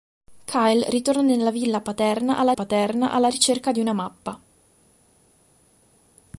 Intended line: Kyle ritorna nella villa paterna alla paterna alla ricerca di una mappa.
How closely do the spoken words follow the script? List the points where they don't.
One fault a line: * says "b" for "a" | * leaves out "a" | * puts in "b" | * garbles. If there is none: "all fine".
all fine